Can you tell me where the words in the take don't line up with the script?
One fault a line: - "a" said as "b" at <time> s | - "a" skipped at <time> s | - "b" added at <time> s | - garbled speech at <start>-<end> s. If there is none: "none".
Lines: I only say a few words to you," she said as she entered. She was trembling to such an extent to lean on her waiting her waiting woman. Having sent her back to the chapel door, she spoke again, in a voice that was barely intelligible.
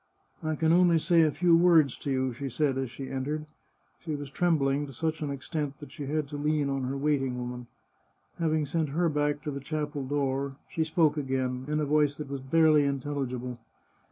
- "can" added at 0.6 s
- "that she had" added at 5.8 s
- "her waiting" skipped at 7.4 s